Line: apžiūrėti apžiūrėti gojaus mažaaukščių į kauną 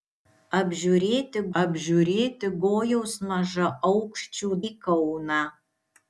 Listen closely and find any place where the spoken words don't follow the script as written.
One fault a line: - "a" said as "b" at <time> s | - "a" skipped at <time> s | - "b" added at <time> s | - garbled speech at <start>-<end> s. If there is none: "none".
none